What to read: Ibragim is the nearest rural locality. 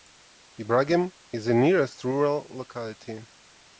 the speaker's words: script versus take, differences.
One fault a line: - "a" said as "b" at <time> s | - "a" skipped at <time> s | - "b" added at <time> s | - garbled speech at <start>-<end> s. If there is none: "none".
none